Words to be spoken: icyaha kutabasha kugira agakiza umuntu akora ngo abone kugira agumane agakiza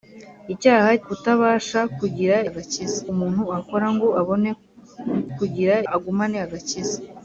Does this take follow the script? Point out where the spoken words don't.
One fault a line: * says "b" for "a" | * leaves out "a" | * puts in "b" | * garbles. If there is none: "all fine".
all fine